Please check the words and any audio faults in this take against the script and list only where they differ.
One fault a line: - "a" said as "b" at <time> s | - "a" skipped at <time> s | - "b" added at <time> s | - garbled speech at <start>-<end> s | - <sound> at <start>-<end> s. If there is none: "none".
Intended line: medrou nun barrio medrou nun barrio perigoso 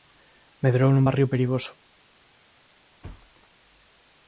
- "medrou nun barrio" skipped at 1.3 s
- thud at 3.0-3.5 s